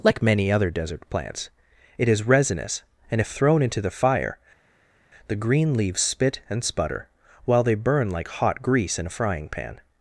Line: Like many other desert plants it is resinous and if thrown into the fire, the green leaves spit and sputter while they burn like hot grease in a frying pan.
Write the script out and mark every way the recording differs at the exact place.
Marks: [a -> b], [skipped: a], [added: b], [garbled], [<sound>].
Like many other desert plants it is resinous and if thrown into the fire, the green leaves spit and sputter while they burn like hot grease in a frying pan.